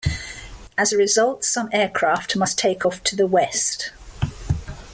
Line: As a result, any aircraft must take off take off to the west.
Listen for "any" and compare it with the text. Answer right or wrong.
wrong